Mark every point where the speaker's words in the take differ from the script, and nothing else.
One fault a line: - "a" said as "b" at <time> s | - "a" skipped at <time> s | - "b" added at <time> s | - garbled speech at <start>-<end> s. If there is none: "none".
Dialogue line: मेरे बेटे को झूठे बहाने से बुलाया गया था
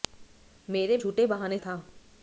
- "बेटे को" skipped at 1.0 s
- "से बुलाया गया" skipped at 1.6 s